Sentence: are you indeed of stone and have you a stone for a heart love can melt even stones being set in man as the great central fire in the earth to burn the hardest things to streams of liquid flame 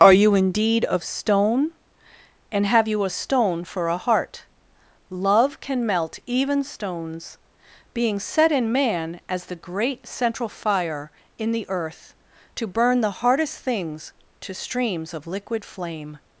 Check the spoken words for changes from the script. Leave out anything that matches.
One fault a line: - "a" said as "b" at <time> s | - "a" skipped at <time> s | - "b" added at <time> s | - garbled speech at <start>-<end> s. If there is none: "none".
none